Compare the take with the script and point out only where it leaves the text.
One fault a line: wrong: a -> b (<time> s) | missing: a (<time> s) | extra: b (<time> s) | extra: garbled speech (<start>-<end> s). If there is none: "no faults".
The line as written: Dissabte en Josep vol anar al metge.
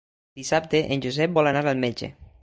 no faults